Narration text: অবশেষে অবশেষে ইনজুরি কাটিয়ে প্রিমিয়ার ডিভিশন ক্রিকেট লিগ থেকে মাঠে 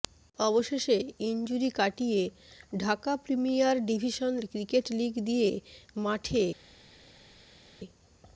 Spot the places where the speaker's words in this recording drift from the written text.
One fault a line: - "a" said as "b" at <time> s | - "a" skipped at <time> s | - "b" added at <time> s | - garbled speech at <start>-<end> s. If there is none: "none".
- "অবশেষে" skipped at 1.0 s
- "ঢাকা" added at 2.8 s
- "থেকে" said as "দিয়ে" at 5.3 s